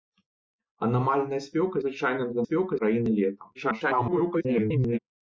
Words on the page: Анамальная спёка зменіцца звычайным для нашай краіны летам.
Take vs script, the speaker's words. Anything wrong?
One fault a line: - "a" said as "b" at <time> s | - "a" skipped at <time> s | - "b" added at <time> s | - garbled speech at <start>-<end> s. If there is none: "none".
- "зменіцца" skipped at 1.8 s
- "нашай" said as "спёка" at 2.5 s
- garbled speech at 3.5-5.0 s